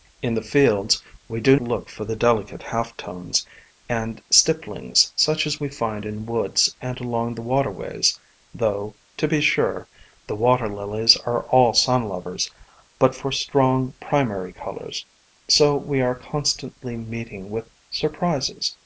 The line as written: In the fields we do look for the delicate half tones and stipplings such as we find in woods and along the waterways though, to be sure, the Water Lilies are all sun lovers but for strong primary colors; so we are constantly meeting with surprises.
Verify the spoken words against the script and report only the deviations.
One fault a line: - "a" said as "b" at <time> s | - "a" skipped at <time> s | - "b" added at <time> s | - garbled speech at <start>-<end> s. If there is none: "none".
none